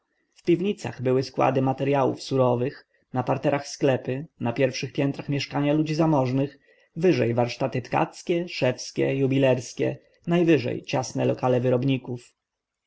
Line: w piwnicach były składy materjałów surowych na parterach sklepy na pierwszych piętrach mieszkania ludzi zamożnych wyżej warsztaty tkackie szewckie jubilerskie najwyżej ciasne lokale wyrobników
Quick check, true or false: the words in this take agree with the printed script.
true